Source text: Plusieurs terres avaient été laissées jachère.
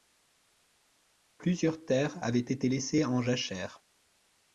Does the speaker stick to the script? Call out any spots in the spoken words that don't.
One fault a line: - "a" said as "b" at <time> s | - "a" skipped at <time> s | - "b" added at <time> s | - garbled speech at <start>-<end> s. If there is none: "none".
- "en" added at 3.0 s